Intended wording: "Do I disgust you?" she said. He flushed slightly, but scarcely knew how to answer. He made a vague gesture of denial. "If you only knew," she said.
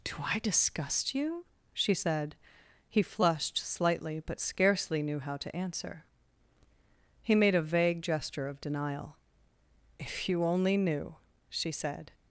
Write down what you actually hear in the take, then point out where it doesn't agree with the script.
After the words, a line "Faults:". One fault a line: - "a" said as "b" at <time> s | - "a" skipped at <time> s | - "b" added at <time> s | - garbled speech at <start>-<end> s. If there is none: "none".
"Do I disgust you?" she said. He flushed slightly, but scarcely knew how to answer. He made a vague gesture of denial. "If you only knew," she said.
Faults:
none